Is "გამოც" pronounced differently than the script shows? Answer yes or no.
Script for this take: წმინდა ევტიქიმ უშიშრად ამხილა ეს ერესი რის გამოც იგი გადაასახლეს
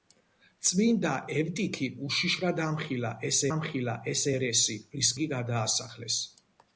yes